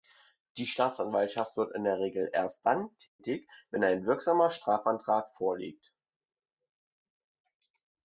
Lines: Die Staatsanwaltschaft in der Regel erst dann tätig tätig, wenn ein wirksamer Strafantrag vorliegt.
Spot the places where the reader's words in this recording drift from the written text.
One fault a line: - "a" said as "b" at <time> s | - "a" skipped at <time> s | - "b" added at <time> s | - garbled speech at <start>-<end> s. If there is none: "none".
- "wird" added at 1.6 s
- "tätig" skipped at 3.5 s